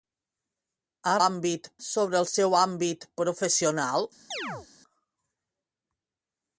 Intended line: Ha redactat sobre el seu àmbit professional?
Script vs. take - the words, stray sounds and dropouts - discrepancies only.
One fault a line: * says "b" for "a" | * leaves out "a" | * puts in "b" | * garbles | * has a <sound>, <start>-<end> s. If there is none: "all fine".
* says "àmbit" for "redactat"
* has a chirp, 4.3-4.7 s